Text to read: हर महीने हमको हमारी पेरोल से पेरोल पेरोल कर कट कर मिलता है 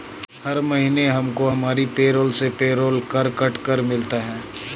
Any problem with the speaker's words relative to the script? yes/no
yes